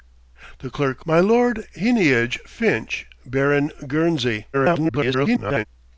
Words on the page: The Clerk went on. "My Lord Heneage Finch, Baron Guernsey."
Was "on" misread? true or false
true